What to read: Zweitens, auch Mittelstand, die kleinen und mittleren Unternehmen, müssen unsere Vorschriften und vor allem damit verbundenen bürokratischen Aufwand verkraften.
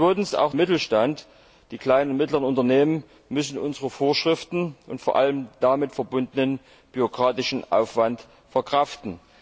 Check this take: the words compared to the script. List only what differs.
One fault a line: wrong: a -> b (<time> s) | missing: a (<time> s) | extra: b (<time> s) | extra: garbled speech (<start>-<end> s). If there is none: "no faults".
no faults